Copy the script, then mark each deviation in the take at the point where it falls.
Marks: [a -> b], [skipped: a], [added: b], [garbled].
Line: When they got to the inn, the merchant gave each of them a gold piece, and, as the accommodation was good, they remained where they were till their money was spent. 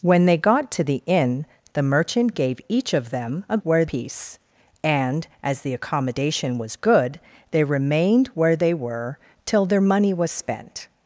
When they got to the inn, the merchant gave each of them a [gold -> where] piece, and, as the accommodation was good, they remained where they were till their money was spent.